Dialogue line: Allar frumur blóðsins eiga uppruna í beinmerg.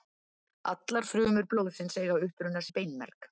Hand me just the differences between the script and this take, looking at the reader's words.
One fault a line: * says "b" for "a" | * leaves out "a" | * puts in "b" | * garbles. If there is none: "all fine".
all fine